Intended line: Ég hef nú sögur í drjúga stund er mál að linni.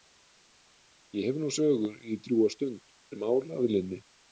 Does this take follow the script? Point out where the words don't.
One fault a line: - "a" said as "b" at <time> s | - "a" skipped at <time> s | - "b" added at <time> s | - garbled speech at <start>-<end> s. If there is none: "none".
none